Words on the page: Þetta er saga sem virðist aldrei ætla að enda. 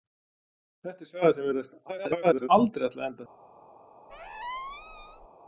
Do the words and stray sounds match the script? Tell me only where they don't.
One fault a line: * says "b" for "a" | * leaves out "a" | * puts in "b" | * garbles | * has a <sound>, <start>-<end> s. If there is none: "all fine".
* garbles
* has a squeak, 4.1-5.3 s